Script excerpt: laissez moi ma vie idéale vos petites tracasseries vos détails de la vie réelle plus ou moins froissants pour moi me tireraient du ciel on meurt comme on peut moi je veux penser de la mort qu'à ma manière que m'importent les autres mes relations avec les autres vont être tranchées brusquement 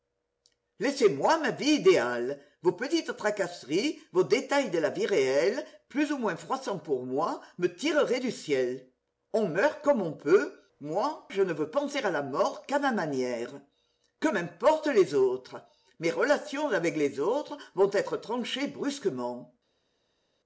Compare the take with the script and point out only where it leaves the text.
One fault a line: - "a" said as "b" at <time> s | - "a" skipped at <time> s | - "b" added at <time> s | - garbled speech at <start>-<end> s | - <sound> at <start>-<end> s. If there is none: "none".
- "ne" added at 11.4 s
- "de" said as "à" at 12.0 s